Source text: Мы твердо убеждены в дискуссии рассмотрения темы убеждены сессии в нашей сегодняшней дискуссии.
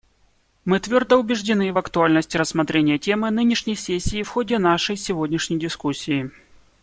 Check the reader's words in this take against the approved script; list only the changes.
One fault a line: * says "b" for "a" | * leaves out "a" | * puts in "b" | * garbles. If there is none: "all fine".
* says "актуальности" for "дискуссии"
* says "нынешней" for "убеждены"
* puts in "ходе"